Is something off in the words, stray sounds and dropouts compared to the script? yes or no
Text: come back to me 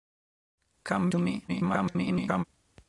yes